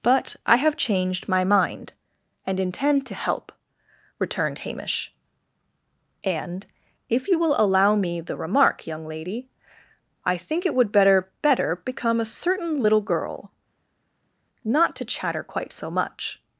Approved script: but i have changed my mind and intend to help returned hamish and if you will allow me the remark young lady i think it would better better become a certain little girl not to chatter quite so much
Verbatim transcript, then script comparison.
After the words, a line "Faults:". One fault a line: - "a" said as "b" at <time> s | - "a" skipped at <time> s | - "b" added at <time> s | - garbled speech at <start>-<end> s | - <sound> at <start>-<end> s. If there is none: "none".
but i have changed my mind and intend to help returned hamish and if you will allow me the remark young lady i think it would better better become a certain little girl not to chatter quite so much
Faults:
none